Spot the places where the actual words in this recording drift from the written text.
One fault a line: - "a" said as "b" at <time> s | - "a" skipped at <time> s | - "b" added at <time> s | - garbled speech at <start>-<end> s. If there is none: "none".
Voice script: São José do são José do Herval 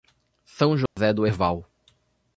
- "são José do" skipped at 1.3 s